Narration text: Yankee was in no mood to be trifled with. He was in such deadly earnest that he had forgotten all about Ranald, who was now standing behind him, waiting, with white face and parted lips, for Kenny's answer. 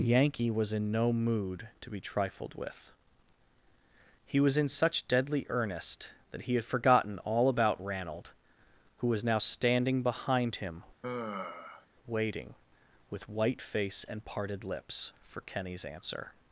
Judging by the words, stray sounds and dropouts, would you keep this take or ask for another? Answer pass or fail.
fail